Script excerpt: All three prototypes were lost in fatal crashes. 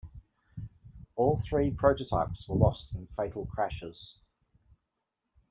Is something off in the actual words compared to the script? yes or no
no